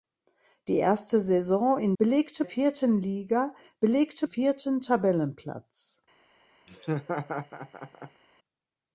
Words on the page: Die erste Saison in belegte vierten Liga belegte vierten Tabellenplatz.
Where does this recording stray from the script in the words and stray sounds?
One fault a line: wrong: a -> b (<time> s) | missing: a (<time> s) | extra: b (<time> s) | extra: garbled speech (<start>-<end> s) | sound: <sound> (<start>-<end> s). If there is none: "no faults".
sound: laugh (6.7-8.2 s)